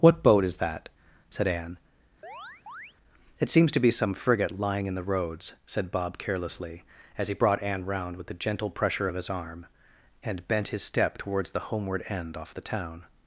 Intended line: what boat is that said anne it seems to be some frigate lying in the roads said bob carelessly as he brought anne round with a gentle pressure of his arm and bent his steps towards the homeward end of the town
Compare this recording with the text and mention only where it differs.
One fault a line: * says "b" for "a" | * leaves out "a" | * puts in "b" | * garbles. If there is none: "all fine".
* says "step" for "steps"
* says "off" for "of"